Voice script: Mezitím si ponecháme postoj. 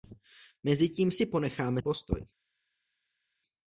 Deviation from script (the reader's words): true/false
false